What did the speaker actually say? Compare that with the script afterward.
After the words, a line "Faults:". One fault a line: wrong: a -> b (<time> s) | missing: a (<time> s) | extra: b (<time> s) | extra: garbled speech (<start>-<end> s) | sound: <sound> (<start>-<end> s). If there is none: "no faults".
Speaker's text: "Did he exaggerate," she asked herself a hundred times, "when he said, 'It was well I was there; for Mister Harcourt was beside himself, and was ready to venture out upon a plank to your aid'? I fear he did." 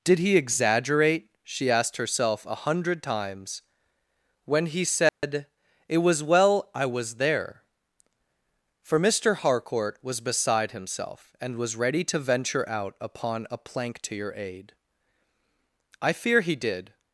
"Did he exaggerate," she asked herself a hundred times, "when he said, 'It was well I was there; for Mister Harcourt was beside himself, and was ready to venture out upon a plank to your aid'? I fear he did."
Faults:
sound: dropout (5.1-5.2 s)